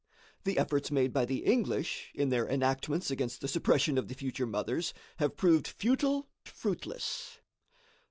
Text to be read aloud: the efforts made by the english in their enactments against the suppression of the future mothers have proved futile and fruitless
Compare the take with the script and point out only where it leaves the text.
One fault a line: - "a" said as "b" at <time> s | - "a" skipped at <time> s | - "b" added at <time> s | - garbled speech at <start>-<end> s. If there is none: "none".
- "and" skipped at 6.3 s